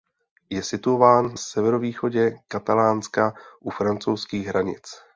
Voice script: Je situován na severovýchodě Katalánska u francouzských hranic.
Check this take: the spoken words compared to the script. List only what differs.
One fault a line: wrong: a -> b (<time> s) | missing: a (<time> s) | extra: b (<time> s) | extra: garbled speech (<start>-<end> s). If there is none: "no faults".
missing: na (1.4 s)